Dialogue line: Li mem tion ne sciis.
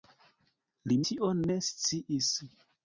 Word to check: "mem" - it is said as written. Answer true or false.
false